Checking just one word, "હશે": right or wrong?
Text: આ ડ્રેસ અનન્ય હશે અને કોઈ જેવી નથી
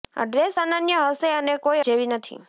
right